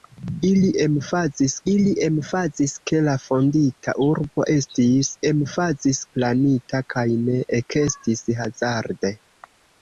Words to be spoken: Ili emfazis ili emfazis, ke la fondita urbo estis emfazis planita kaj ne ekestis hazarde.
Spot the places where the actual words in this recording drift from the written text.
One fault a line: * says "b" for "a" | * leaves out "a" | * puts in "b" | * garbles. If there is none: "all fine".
all fine